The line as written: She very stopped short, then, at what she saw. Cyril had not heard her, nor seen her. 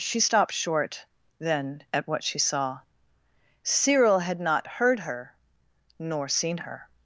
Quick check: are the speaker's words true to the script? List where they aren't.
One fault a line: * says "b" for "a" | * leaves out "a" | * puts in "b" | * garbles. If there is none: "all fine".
* leaves out "very"